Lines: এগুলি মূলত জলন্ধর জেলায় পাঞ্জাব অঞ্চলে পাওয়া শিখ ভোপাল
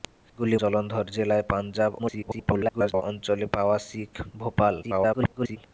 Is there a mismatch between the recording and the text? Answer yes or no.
yes